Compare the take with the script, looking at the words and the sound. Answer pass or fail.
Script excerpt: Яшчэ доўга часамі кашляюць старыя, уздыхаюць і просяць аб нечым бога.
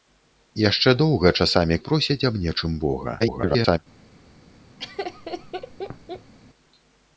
fail